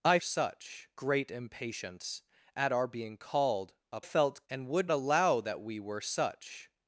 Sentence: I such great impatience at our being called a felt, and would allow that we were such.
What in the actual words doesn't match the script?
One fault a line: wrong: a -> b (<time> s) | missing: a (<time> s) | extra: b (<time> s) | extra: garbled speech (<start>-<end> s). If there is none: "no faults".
no faults